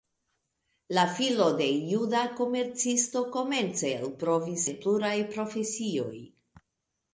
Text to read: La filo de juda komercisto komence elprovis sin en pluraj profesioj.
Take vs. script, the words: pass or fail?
fail